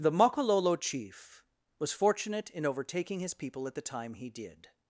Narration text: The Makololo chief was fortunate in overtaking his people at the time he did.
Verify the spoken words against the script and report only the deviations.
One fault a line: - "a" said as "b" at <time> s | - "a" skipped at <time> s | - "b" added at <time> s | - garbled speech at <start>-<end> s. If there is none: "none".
none